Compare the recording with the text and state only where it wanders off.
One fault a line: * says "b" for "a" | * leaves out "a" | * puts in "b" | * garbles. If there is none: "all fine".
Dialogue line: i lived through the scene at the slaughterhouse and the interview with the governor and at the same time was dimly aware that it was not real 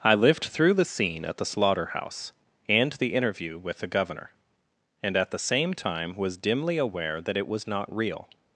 all fine